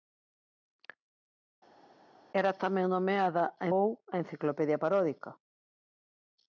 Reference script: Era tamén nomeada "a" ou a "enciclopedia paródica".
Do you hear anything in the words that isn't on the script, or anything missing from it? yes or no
no